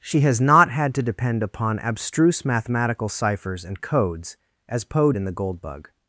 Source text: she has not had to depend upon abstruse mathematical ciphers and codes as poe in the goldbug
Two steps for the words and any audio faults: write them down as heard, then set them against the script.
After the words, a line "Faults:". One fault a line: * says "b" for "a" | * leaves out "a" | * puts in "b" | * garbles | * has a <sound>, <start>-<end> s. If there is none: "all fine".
she has not had to depend upon abstruse mathematical ciphers and codes as poe in the goldbug
Faults:
all fine